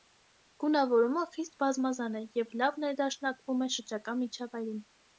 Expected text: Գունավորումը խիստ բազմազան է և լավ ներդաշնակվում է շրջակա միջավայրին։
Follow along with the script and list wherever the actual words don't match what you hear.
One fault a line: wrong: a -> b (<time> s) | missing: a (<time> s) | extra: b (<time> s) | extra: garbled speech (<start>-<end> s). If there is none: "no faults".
no faults